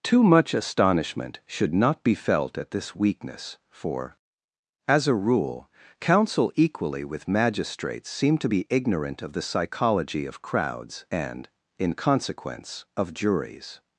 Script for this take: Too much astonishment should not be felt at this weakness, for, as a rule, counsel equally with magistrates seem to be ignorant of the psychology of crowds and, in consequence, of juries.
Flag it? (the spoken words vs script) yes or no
no